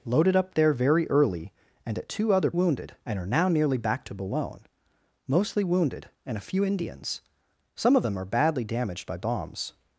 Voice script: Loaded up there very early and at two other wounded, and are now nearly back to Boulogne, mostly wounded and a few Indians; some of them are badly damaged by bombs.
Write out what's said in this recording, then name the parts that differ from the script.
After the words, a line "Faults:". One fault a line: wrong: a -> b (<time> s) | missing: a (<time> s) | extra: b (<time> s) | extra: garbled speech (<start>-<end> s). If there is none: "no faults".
Loaded up there very early and at two other wounded, and are now nearly back to Boulogne, mostly wounded and a few Indians; some of them are badly damaged by bombs.
Faults:
no faults